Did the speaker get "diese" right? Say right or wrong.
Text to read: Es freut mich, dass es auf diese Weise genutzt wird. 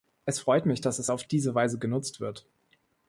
right